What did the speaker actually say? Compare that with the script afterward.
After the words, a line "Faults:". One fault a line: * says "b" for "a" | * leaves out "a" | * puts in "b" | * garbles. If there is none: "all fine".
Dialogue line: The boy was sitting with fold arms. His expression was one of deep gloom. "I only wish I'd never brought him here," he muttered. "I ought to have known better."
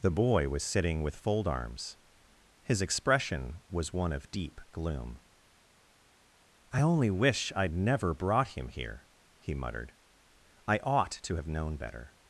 The boy was sitting with fold arms. His expression was one of deep gloom. "I only wish I'd never brought him here," he muttered. "I ought to have known better."
Faults:
all fine